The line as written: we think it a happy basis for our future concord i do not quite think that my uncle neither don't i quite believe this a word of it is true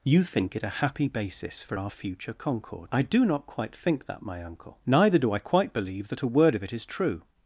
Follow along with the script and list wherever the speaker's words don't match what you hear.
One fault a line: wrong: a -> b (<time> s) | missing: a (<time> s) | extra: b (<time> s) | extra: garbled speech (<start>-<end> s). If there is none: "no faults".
wrong: we -> you (0.0 s)
wrong: don't -> do (5.2 s)
wrong: this -> that (6.1 s)